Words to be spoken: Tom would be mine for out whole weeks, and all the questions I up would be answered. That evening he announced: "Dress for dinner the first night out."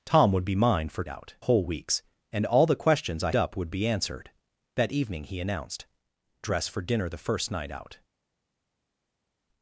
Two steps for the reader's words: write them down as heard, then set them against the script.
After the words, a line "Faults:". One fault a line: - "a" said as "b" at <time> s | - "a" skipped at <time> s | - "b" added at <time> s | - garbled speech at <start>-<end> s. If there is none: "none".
Tom would be mine for out whole weeks, and all the questions I up would be answered. That evening he announced: "Dress for dinner the first night out."
Faults:
none